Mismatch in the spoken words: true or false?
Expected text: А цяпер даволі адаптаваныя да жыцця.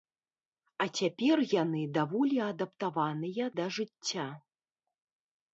true